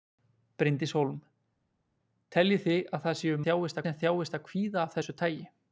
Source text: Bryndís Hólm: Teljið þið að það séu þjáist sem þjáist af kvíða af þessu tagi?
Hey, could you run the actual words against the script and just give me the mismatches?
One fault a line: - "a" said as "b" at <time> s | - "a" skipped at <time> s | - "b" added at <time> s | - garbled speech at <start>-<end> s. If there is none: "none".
none